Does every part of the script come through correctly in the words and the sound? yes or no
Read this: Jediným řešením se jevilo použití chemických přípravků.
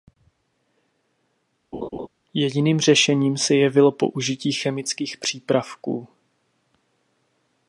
no